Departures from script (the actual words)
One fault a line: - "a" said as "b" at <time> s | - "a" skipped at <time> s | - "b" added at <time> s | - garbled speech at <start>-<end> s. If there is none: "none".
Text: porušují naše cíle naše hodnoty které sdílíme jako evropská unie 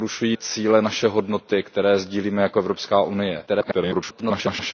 - "naše" skipped at 0.4 s
- garbled speech at 3.5-4.7 s